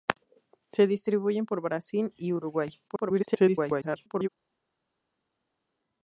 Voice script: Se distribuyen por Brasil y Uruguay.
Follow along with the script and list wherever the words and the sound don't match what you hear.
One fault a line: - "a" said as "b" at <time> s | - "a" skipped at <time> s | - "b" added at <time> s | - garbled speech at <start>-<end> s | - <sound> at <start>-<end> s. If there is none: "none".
- garbled speech at 2.9-4.3 s